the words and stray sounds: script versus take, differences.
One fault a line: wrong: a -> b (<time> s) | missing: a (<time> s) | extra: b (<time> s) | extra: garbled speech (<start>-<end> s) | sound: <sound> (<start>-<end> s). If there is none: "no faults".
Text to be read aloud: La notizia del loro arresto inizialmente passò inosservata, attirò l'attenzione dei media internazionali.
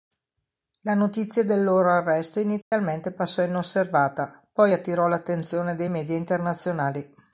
sound: dropout (2.6-2.7 s)
extra: poi (4.5 s)